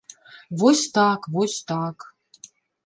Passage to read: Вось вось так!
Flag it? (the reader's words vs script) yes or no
yes